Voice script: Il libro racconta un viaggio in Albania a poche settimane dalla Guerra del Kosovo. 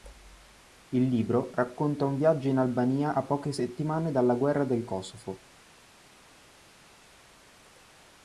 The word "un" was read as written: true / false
true